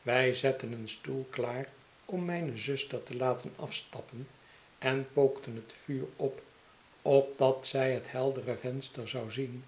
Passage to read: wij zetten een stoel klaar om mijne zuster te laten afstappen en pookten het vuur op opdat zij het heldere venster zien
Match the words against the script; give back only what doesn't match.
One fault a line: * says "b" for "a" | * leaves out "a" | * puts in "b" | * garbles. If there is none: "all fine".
* puts in "zou"